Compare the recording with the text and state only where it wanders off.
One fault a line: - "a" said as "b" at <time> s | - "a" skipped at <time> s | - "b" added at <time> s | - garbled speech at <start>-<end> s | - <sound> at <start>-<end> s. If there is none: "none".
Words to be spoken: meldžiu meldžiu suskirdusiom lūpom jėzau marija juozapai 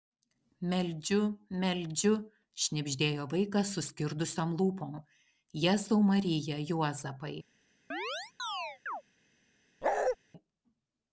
- "šnibždėjo vaikas" added at 2.6 s
- chirp at 7.9-9.0 s
- bark at 9.8-10.2 s